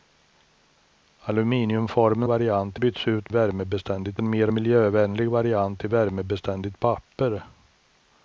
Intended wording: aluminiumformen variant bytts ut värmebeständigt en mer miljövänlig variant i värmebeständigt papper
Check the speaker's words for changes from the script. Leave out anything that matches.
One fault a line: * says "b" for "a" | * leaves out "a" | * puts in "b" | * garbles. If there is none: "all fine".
all fine